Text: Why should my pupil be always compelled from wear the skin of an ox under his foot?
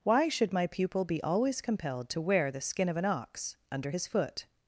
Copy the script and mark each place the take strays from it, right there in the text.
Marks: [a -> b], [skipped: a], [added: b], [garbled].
Why should my pupil be always compelled [from -> to] wear the skin of an ox under his foot?